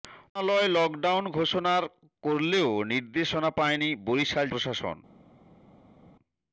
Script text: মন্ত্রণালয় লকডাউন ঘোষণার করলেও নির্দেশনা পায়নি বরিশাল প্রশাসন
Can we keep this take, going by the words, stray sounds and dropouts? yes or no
yes